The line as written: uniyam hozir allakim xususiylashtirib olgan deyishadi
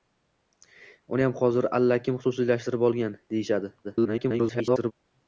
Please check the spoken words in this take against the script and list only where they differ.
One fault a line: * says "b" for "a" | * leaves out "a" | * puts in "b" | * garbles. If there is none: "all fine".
* garbles